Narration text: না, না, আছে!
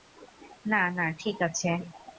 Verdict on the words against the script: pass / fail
fail